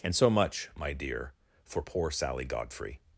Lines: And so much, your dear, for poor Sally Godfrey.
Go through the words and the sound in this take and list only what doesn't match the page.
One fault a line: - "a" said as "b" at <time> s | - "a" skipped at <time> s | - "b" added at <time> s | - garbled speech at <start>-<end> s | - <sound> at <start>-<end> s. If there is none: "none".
- "your" said as "my" at 0.8 s